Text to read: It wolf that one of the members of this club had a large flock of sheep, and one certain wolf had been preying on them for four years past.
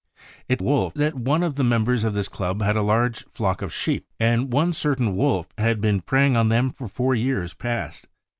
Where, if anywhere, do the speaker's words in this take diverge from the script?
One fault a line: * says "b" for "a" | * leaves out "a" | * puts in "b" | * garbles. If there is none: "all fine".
all fine